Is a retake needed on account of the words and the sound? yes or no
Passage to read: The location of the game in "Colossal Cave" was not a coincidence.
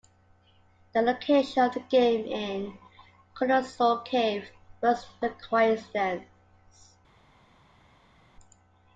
yes